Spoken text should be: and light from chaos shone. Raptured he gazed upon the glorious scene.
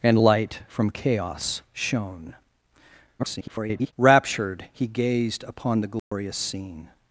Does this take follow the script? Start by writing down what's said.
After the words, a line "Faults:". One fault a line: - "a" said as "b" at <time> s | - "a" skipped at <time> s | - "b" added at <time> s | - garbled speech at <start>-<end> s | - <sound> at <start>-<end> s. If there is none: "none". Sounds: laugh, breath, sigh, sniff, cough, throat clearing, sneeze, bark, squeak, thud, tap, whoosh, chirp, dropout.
and light from chaos shone. [garbled] Raptured he gazed upon the glorious scene.
Faults:
- garbled speech at 3.2-3.9 s
- dropout at 6.0-6.1 s